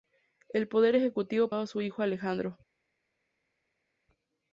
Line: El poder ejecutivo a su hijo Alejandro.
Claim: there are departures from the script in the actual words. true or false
false